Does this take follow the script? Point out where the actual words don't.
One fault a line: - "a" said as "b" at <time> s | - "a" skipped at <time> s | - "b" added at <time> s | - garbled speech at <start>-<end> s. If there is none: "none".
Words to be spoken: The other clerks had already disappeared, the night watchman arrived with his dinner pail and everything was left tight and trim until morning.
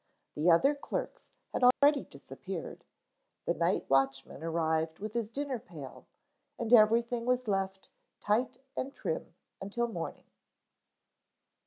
none